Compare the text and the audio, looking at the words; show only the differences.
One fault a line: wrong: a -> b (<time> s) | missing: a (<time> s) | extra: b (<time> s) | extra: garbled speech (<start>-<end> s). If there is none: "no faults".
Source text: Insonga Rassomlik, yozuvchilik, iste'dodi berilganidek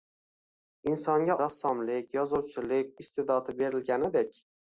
no faults